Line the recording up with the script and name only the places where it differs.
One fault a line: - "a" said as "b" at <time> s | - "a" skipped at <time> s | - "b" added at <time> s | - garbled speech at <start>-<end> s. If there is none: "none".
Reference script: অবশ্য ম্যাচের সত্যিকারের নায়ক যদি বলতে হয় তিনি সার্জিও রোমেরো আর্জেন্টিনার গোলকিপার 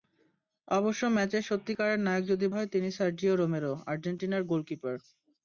- "বলতে" skipped at 2.5 s